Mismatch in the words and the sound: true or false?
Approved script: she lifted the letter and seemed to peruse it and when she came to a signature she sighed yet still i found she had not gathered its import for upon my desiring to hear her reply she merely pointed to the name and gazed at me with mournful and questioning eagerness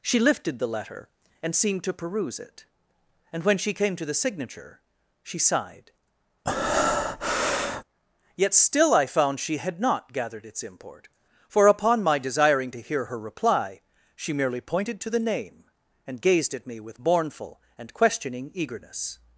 true